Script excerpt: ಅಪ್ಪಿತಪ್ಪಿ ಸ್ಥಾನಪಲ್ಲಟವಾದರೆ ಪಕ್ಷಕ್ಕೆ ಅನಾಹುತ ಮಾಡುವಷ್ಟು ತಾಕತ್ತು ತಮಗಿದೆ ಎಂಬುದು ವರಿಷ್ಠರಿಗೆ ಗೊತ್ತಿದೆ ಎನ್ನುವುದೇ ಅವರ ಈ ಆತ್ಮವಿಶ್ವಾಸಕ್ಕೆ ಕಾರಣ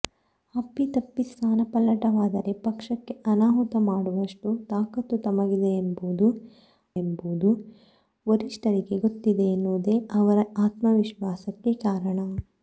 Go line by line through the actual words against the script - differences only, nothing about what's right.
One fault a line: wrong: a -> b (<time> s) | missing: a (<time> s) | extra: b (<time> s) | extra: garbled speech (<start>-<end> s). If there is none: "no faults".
extra: ಎಂಬುದು (7.0 s)
missing: ಈ (10.4 s)